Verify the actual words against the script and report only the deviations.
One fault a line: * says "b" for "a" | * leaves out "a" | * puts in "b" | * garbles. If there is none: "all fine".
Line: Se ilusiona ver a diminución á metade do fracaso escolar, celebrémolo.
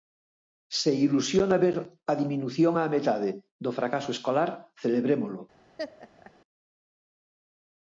all fine